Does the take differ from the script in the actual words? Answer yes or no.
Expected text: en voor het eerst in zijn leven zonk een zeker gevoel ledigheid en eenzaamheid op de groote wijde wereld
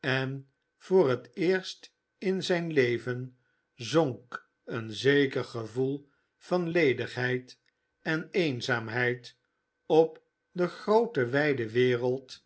yes